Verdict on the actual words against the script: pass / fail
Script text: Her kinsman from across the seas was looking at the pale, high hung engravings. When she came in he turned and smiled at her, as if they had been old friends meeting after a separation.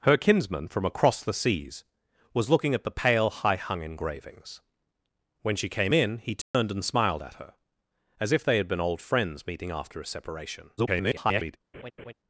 fail